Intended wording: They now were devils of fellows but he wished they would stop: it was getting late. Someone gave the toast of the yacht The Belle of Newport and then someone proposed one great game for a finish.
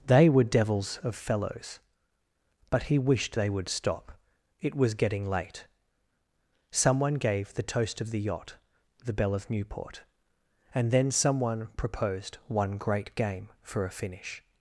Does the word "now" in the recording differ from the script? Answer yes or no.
yes